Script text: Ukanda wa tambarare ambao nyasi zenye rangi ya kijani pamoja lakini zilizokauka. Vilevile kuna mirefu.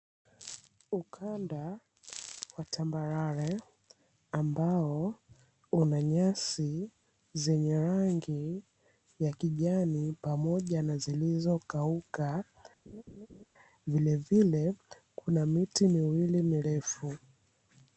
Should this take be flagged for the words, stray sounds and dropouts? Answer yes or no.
yes